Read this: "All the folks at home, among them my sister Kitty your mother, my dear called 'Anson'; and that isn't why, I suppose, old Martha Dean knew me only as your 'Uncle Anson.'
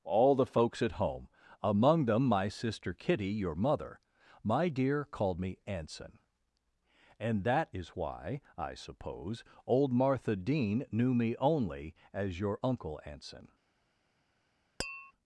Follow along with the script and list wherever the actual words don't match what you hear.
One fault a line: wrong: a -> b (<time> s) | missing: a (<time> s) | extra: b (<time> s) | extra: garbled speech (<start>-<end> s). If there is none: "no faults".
extra: me (5.4 s)
wrong: isn't -> is (7.7 s)